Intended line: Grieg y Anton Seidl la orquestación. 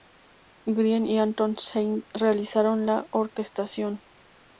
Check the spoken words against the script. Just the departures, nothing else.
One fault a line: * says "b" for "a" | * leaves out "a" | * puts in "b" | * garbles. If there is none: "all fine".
* puts in "realizaron"